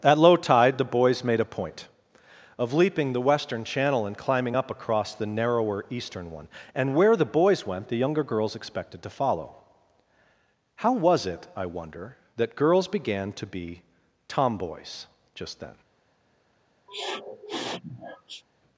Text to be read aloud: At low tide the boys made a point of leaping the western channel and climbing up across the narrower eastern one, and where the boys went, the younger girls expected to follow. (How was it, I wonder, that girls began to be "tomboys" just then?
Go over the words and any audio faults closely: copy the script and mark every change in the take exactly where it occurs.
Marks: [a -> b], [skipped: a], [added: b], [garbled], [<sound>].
At low tide the boys made a point of leaping the western channel and climbing up across the narrower eastern one, and where the boys went, the younger girls expected to follow. (How was it, I wonder, that girls began to be "tomboys" just then? [sniff]